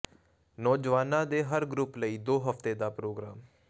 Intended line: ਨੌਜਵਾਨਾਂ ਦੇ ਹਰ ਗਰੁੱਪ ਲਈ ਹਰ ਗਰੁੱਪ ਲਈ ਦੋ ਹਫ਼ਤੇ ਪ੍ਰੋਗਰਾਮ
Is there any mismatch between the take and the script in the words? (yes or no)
yes